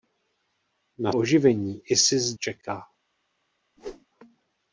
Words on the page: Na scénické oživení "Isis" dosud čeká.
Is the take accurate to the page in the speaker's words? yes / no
no